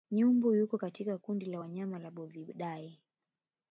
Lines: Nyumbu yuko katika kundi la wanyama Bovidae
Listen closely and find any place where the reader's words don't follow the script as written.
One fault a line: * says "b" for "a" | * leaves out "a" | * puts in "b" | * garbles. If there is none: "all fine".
* puts in "la"